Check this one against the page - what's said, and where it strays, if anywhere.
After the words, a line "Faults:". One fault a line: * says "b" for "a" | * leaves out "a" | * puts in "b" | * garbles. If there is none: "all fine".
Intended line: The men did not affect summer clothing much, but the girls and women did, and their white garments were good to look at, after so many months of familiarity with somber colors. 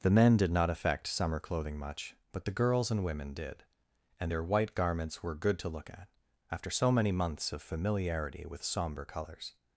The men did not affect summer clothing much, but the girls and women did, and their white garments were good to look at, after so many months of familiarity with somber colors.
Faults:
all fine